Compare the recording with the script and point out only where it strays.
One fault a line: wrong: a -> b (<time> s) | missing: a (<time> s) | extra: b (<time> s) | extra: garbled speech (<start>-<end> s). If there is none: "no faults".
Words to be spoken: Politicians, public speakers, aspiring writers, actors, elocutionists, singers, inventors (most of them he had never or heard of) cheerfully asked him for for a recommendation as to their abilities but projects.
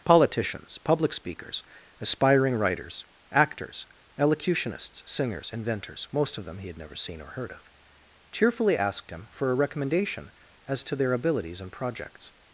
extra: seen (7.0 s)
missing: for (9.5 s)
wrong: but -> and (11.6 s)